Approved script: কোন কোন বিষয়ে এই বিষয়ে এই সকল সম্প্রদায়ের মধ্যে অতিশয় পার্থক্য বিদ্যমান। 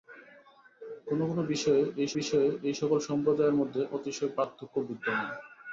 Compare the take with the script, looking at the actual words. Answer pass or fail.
pass